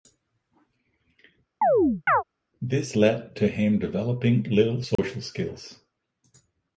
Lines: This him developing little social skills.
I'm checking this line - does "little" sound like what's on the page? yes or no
yes